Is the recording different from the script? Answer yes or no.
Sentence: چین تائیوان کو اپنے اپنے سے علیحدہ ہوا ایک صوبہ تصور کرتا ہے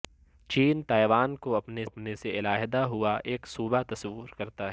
no